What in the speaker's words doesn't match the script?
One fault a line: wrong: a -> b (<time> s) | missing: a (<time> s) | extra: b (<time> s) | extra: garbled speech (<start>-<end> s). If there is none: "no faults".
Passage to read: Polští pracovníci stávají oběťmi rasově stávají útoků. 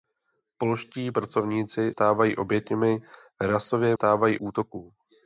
no faults